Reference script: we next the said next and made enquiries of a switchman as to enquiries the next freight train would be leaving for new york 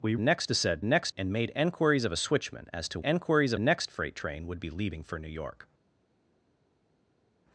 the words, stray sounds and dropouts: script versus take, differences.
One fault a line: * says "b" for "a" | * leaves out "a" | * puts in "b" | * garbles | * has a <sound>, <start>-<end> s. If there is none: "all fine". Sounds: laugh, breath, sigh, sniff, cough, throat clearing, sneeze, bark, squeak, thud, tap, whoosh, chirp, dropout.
all fine